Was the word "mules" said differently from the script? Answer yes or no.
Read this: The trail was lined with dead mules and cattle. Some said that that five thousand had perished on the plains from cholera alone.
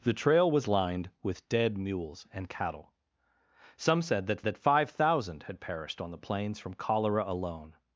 no